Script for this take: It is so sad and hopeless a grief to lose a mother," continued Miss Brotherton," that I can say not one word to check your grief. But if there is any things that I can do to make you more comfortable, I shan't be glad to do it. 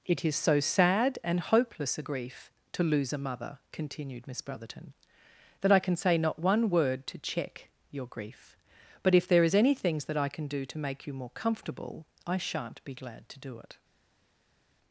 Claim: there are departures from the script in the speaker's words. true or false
false